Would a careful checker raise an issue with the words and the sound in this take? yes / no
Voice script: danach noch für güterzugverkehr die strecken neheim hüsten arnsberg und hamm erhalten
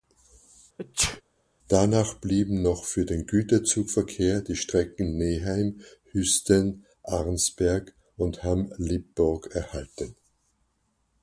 yes